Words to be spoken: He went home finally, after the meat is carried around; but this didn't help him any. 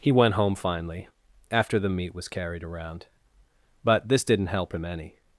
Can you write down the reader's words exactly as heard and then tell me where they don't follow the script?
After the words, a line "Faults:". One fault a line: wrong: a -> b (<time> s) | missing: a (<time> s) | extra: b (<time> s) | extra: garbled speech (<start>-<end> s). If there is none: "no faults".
He went home finally, after the meat was carried around; but this didn't help him any.
Faults:
wrong: is -> was (2.2 s)